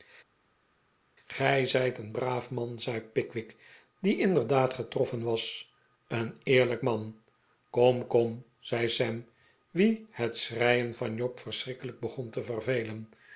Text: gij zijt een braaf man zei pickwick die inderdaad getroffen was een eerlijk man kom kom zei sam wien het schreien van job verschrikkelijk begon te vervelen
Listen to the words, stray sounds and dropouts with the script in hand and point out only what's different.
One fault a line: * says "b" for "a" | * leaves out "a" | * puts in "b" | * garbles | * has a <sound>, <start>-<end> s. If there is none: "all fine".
all fine